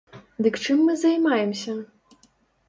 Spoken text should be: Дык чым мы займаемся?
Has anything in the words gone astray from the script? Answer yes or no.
no